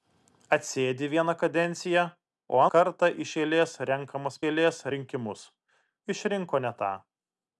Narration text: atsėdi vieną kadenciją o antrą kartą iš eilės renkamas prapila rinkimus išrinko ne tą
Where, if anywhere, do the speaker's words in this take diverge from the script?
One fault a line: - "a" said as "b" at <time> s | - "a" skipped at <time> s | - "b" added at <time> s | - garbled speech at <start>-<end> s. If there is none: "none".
- "antrą" skipped at 2.6 s
- "prapila" said as "eilės" at 4.5 s